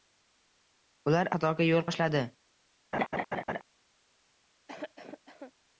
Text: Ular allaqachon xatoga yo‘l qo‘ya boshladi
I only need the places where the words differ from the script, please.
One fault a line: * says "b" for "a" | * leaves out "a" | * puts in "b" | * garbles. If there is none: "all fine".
* leaves out "allaqachon"
* leaves out "qo‘ya"